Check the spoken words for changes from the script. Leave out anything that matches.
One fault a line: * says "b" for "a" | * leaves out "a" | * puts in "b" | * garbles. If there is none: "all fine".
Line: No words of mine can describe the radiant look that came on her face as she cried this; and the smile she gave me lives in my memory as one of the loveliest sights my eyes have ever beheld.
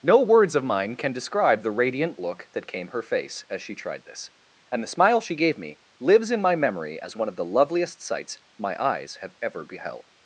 * leaves out "on"
* says "tried" for "cried"